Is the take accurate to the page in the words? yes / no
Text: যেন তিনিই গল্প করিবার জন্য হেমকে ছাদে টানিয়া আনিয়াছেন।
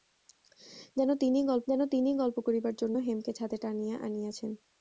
no